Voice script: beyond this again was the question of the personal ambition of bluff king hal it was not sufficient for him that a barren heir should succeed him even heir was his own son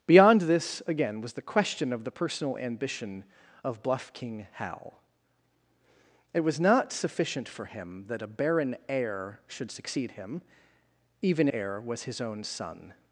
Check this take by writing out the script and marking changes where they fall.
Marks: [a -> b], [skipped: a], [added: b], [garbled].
beyond this again was the question of the personal ambition of bluff king hal it was not sufficient for him that a barren heir should succeed him even heir was his own son